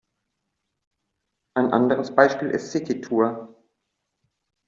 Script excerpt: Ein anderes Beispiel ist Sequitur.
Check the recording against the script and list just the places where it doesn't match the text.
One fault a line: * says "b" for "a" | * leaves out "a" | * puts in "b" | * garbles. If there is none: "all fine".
all fine